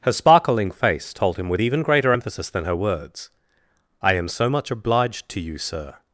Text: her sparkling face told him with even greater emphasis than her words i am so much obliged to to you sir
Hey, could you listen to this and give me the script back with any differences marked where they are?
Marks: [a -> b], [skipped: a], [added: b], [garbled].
her sparkling face told him with even greater emphasis than her words i am so much obliged to [skipped: to] you sir